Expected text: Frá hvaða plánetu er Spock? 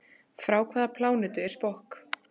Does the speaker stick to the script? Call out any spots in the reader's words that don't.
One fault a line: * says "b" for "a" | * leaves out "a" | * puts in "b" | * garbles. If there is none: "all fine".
all fine